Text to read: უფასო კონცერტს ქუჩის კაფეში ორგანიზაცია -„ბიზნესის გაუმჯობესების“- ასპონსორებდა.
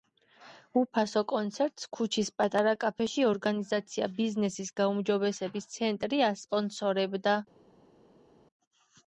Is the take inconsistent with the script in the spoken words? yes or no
yes